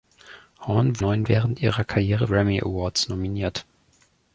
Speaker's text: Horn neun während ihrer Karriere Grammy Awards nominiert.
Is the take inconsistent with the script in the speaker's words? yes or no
no